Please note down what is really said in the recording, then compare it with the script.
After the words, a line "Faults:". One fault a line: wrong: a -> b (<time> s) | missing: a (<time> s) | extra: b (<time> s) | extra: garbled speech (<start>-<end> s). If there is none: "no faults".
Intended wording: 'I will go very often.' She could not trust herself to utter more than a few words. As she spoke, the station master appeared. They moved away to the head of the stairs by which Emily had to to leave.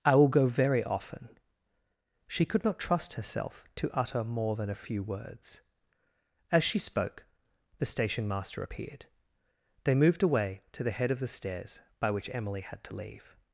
'I will go very often.' She could not trust herself to utter more than a few words. As she spoke, the station master appeared. They moved away to the head of the stairs by which Emily had to leave.
Faults:
missing: to (13.0 s)